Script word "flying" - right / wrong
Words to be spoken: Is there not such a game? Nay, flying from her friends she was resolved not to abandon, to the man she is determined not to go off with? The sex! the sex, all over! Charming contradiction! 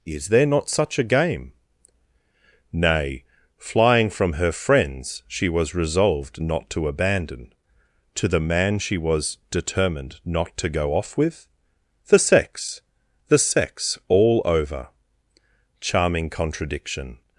right